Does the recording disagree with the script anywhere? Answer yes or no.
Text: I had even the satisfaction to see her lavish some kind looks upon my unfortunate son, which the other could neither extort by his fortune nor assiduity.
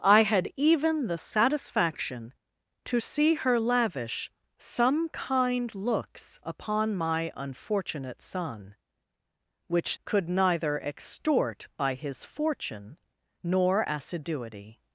yes